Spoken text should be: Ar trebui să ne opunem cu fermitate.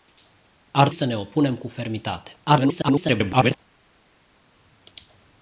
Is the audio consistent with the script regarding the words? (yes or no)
no